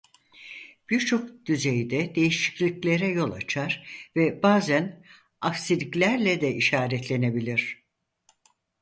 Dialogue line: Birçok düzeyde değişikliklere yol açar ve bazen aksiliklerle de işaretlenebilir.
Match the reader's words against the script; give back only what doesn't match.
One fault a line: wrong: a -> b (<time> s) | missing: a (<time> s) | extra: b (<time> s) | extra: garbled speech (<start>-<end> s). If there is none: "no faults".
no faults